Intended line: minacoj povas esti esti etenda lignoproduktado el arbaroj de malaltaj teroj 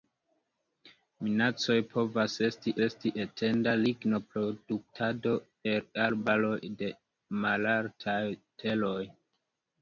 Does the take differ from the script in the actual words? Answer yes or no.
no